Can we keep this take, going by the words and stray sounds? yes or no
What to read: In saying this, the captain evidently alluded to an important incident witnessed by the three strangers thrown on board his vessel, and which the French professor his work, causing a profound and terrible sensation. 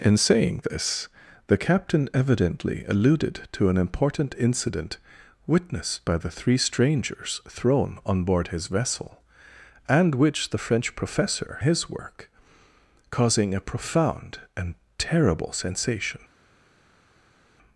yes